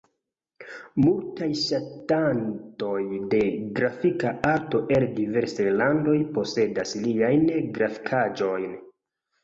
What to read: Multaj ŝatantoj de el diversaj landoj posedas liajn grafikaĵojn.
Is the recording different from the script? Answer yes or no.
yes